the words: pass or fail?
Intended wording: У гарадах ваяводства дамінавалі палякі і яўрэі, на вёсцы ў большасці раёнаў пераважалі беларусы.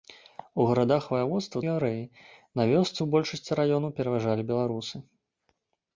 fail